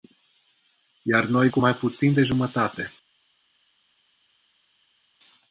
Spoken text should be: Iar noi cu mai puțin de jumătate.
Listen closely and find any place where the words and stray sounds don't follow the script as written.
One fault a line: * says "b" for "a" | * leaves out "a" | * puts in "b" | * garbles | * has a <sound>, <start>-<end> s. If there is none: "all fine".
all fine